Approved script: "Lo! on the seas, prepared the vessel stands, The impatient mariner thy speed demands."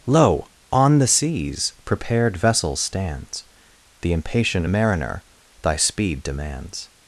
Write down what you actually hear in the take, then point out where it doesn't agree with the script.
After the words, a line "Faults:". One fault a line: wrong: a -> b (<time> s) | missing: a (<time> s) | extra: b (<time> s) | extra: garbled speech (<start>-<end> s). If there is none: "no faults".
"Lo! on the seas, prepared vessel stands, The impatient mariner thy speed demands."
Faults:
missing: the (2.4 s)